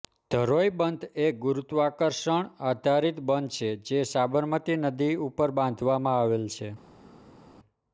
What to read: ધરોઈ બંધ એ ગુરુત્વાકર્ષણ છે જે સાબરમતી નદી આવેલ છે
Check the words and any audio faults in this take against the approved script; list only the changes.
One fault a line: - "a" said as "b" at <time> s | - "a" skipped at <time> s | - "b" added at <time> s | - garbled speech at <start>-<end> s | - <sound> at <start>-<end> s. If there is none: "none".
- "આધારિત બંધ" added at 2.6 s
- "ઉપર બાંધવામાં" added at 5.3 s